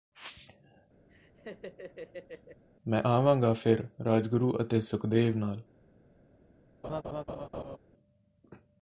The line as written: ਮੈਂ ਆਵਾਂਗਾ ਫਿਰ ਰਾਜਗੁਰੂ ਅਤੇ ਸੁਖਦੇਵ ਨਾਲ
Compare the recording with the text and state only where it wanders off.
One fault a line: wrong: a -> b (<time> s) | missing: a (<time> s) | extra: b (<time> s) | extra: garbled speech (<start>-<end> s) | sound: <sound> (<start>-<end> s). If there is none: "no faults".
sound: laugh (1.1-2.6 s)
sound: laugh (6.8-7.8 s)